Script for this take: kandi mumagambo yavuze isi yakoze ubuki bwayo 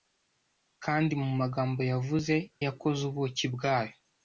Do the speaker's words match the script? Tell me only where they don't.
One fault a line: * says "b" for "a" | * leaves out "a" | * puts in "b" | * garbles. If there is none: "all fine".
* leaves out "isi"